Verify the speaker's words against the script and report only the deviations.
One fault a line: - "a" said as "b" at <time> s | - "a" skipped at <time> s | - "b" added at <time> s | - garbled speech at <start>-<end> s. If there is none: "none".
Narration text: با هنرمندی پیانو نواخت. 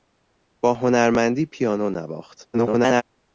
- garbled speech at 2.5-3.0 s